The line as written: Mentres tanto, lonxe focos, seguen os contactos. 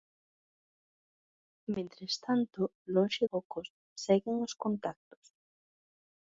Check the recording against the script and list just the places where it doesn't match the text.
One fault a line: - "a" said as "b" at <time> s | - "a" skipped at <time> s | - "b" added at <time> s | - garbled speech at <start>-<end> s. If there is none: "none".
none